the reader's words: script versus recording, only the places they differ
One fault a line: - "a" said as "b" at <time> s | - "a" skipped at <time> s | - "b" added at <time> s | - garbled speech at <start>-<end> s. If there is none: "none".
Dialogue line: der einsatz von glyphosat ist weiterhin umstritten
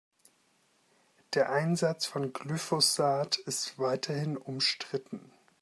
none